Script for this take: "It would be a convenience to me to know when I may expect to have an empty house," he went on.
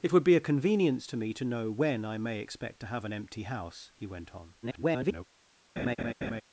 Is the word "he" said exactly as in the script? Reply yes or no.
yes